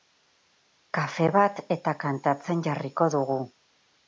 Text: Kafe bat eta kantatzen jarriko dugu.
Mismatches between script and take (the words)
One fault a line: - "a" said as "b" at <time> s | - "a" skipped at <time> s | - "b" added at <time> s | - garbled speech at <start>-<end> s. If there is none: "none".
none